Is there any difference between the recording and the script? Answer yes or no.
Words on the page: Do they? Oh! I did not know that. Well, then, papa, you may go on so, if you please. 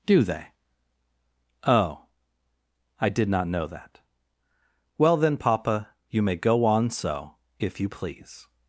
no